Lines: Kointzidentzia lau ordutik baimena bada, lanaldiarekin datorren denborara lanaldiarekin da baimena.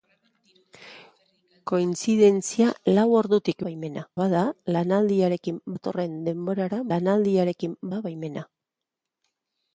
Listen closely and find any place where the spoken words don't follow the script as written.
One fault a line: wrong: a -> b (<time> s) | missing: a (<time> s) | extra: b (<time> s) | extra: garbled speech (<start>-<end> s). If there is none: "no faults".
no faults